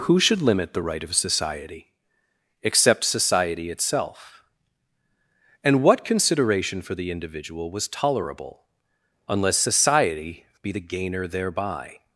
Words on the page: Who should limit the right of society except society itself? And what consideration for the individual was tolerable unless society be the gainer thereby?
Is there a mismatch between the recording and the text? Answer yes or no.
no